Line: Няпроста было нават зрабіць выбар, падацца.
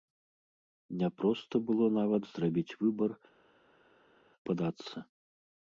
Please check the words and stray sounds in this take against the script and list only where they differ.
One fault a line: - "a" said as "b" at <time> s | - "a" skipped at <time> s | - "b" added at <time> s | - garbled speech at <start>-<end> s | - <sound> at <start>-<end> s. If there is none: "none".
none